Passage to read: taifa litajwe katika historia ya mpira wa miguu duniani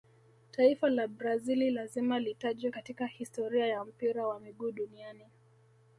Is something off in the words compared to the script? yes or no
yes